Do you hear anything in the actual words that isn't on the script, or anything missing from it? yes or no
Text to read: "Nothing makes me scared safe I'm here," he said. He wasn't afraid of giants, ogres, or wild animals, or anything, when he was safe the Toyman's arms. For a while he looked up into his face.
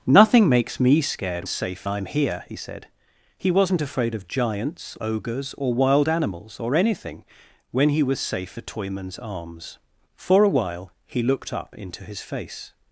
no